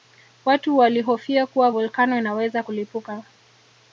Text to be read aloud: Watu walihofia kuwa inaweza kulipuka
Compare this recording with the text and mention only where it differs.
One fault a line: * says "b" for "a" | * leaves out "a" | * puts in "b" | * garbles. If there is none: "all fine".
* puts in "volkano"